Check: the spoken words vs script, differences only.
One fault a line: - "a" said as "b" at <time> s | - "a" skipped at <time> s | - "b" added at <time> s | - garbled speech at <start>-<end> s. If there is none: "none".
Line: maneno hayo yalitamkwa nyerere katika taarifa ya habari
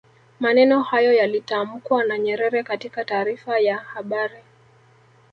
- "na" added at 2.0 s